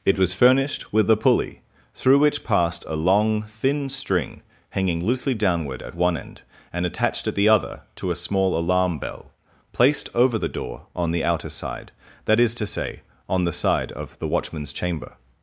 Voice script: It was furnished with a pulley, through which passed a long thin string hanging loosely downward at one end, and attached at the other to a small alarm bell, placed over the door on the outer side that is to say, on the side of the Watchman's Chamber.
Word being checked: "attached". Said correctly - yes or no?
yes